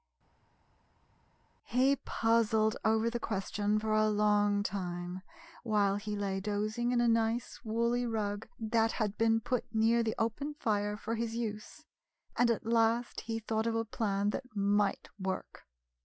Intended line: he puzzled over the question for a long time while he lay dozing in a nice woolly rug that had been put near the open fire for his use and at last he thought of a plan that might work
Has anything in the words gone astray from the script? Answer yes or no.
no